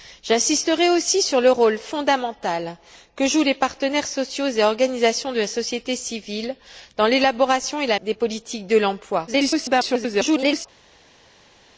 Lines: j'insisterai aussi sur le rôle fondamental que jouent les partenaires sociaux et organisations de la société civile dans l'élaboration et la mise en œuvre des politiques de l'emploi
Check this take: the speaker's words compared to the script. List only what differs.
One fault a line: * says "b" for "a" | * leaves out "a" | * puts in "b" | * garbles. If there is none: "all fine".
* leaves out "mise en œuvre"
* garbles